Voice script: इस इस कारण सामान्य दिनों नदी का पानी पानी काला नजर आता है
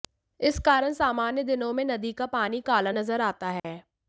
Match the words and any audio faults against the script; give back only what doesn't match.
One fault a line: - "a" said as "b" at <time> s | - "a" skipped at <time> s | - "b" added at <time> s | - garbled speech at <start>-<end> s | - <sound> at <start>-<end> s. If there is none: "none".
- "इस" skipped at 0.6 s
- "में" added at 1.7 s
- "पानी" skipped at 2.6 s
- dropout at 3.6-3.6 s